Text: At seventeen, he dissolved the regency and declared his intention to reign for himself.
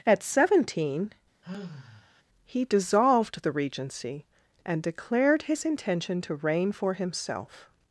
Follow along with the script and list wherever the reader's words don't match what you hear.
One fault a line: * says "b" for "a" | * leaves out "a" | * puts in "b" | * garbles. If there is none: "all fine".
all fine